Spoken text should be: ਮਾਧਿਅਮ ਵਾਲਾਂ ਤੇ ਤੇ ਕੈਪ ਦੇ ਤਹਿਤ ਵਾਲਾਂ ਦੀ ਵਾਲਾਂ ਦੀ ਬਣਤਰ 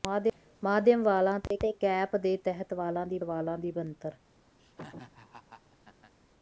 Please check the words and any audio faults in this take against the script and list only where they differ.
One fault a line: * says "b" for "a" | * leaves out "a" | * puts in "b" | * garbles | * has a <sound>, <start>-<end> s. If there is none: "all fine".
* has a dropout, 1.5-1.5 s
* has a laugh, 4.6-6.1 s